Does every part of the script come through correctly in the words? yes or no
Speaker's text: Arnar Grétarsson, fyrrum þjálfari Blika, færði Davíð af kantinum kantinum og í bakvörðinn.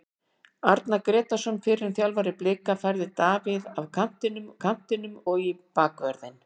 yes